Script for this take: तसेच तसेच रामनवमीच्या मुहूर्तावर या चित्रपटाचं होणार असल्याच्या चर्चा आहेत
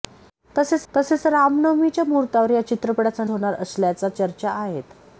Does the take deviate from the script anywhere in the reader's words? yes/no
no